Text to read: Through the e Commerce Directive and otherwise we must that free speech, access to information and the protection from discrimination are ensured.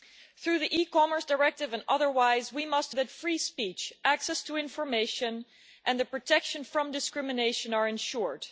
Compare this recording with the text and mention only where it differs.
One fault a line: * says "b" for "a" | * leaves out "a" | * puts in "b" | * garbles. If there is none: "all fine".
all fine